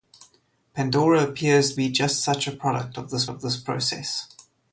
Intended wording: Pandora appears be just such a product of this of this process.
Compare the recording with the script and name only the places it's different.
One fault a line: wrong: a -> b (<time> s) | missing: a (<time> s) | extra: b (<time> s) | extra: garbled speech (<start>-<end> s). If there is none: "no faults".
no faults